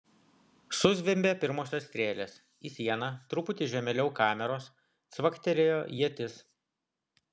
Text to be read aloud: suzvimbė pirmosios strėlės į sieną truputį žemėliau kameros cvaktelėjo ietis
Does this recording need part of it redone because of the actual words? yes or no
no